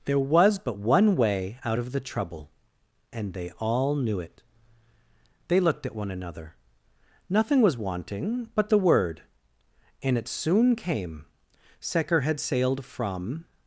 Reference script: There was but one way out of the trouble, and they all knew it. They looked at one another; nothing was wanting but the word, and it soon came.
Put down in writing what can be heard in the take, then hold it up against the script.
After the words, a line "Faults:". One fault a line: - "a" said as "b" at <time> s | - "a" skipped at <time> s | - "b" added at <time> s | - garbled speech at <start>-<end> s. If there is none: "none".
There was but one way out of the trouble, and they all knew it. They looked at one another; nothing was wanting but the word, and it soon came. Secker had sailed from
Faults:
- "Secker had sailed from" added at 11.8 s